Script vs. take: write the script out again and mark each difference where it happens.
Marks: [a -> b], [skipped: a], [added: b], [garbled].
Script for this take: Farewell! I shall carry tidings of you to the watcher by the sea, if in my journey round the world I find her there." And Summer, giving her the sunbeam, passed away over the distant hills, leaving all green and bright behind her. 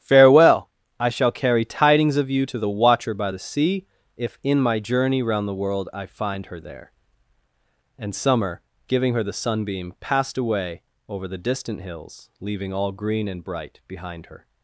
Farewell! I shall carry tidings of you to the watcher by the sea, if in my journey round the world I find her there." And Summer, giving her the sunbeam, passed away over the distant hills, leaving all green and bright behind her.